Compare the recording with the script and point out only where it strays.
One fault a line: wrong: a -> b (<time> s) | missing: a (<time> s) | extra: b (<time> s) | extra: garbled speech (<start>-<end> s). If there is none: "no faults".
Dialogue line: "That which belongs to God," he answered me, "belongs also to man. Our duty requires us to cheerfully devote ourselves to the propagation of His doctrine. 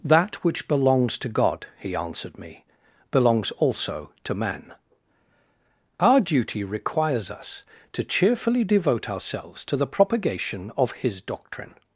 no faults